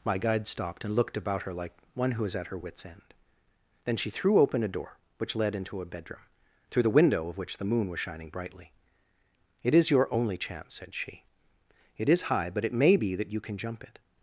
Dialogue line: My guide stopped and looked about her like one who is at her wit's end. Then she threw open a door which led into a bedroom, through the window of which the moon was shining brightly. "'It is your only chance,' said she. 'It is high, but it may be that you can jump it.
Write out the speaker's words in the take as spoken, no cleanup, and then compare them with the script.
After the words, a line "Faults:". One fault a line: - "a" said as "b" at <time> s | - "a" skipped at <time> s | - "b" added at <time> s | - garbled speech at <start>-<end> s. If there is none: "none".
My guide stopped and looked about her like one who is at her wit's end. Then she threw open a door which led into a bedroom, through the window of which the moon was shining brightly. "'It is your only chance,' said she. 'It is high, but it may be that you can jump it.
Faults:
none